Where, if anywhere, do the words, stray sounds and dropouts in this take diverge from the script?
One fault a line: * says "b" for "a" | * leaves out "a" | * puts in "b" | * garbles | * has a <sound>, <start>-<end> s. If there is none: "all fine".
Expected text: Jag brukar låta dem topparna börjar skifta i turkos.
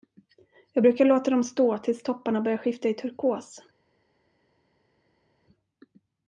* puts in "stå tills"